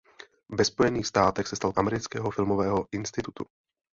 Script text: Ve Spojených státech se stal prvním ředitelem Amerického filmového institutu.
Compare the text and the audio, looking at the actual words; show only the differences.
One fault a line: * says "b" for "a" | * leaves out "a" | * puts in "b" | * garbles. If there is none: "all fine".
* leaves out "prvním ředitelem"